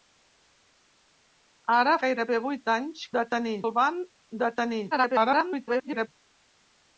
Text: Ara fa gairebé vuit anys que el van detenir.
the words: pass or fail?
fail